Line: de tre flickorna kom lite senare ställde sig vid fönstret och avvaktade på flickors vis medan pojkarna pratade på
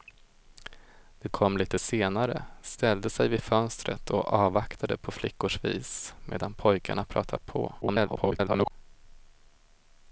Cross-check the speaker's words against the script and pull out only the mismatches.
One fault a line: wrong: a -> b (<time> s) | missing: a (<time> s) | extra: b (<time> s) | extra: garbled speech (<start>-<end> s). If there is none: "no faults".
missing: tre flickorna (1.3 s)
extra: garbled speech (7.8-8.7 s)